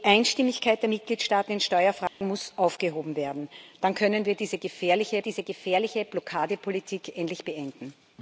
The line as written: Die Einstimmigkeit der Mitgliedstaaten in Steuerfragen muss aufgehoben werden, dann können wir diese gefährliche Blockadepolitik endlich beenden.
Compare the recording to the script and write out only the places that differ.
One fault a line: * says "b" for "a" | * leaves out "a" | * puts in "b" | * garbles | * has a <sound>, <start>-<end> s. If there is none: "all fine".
* has a dropout, 2.1-2.2 s
* puts in "diese gefährliche"